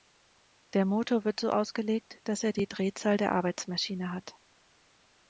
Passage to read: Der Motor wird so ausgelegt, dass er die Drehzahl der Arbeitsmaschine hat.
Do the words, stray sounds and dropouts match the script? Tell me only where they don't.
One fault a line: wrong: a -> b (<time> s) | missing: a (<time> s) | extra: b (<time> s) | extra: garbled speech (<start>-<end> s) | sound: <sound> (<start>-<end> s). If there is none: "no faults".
no faults